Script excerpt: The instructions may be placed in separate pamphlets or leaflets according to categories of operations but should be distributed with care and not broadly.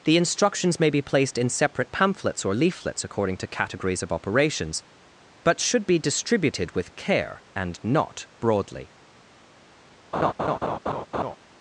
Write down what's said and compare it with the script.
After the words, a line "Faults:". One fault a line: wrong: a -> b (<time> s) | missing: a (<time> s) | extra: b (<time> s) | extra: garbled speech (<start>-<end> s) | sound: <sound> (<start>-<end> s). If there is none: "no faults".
The instructions may be placed in separate pamphlets or leaflets according to categories of operations but should be distributed with care and not broadly.
Faults:
sound: laugh (10.1-11.4 s)